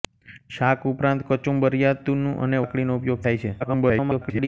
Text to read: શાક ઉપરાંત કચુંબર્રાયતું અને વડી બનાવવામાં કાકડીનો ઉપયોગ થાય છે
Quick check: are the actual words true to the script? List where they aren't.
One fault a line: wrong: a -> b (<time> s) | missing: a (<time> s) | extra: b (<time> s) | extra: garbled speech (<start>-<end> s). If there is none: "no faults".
missing: વડી બનાવવામાં (2.6 s)
extra: garbled speech (3.6-4.5 s)